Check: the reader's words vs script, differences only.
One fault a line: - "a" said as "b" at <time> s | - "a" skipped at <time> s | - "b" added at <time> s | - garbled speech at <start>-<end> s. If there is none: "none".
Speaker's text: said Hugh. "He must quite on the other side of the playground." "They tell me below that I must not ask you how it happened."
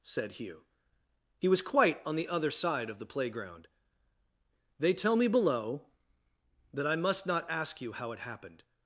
- "must" said as "was" at 1.5 s